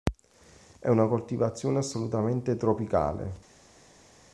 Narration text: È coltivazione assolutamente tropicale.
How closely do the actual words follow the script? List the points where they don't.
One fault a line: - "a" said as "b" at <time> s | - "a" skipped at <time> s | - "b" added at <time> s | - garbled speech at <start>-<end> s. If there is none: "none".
- "una" added at 0.9 s